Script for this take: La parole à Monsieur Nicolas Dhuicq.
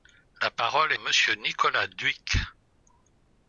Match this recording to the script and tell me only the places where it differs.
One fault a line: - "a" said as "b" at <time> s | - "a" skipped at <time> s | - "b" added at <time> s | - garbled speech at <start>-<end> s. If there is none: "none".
none